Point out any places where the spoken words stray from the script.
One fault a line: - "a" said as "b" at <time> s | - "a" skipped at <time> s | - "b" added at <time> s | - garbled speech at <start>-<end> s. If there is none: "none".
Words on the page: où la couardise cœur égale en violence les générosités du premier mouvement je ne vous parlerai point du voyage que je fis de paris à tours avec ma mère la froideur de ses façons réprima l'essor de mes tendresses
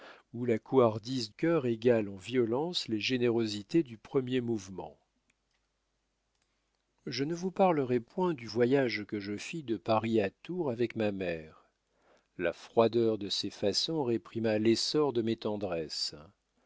none